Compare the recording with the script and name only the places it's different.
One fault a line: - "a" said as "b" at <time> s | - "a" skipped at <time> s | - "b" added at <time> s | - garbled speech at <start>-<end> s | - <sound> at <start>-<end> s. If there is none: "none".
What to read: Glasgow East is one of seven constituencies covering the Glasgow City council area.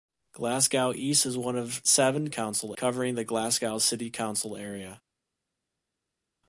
- "constituencies" said as "council" at 2.3 s